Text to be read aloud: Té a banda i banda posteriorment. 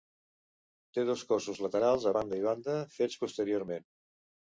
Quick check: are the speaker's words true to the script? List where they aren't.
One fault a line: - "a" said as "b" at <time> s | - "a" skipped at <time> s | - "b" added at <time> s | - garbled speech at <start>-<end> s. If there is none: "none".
- "dos cossos laterals" added at 1.1 s
- "fets" added at 3.0 s